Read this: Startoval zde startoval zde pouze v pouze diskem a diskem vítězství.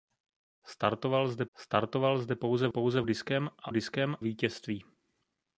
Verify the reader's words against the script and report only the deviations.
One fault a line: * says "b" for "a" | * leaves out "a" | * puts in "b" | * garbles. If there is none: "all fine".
all fine